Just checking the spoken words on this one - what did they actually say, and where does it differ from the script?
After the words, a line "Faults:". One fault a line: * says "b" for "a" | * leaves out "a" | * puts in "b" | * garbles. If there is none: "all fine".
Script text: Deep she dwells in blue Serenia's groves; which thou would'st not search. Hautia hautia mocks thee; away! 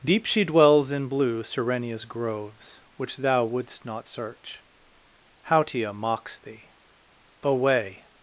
Deep she dwells in blue Serenia's groves; which thou would'st not search. Hautia mocks thee; away!
Faults:
* leaves out "hautia"